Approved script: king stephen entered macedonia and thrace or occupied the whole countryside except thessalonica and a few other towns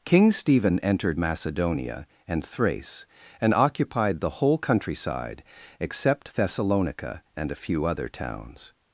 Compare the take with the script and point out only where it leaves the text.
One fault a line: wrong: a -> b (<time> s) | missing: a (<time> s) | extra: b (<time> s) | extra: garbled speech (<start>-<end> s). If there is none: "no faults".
wrong: or -> and (3.4 s)